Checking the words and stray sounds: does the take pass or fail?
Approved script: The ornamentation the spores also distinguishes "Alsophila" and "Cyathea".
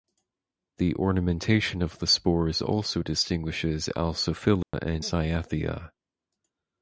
fail